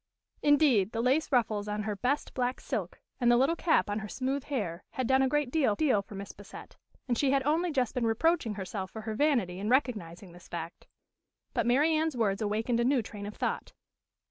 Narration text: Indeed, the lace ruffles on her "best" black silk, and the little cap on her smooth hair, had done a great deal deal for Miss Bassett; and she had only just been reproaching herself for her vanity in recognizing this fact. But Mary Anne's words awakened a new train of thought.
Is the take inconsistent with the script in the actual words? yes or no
no